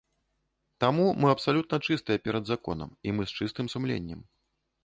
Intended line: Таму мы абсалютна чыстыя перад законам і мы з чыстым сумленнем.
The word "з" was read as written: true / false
true